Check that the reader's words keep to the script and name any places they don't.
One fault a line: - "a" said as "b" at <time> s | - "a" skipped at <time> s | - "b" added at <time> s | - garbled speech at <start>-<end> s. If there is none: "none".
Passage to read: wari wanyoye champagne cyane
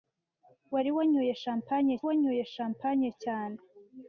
- "wanyoye champagne" added at 2.1 s